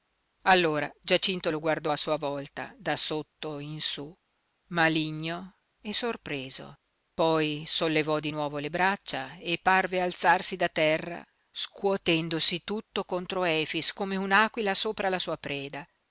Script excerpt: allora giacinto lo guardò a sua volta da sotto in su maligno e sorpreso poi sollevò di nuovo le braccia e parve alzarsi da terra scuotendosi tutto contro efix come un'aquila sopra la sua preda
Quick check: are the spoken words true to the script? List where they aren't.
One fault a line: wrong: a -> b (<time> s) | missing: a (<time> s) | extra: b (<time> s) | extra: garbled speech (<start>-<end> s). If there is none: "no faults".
no faults